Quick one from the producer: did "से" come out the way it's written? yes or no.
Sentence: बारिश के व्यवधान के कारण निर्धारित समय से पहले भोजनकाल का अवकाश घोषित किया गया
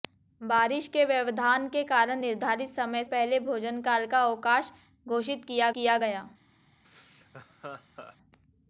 no